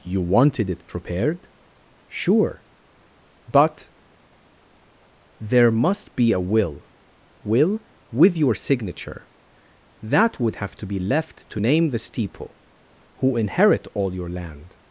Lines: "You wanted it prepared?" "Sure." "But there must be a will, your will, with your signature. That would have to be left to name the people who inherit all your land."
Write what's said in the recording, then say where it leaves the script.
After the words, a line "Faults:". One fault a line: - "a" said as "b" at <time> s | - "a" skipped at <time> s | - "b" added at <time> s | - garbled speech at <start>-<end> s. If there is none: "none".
"You wanted it prepared?" "Sure." "But there must be a will, will, with your signature. That would have to be left to name the steeple who inherit all your land."
Faults:
- "your" skipped at 6.9 s
- "people" said as "steeple" at 12.0 s